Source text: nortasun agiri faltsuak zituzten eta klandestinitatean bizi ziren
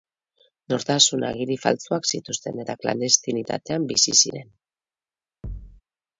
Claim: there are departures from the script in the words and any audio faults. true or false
true